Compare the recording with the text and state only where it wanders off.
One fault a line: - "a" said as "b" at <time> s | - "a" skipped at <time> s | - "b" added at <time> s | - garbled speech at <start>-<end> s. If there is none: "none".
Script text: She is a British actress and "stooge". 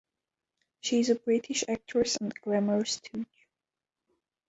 - "glamour" added at 2.3 s